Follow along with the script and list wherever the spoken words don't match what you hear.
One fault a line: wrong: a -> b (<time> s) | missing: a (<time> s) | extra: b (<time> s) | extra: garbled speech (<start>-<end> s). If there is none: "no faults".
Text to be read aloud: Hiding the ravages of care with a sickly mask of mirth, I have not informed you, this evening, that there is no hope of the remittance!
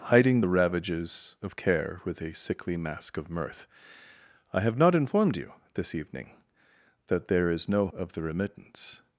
missing: hope (7.9 s)